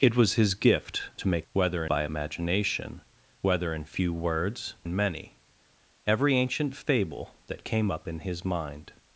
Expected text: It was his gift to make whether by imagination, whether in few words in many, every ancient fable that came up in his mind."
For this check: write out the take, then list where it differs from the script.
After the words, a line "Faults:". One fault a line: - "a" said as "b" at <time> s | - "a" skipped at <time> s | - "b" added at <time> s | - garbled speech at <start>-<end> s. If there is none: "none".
It was his gift to make whether by imagination, whether in few words in many, every ancient fable that came up in his mind."
Faults:
none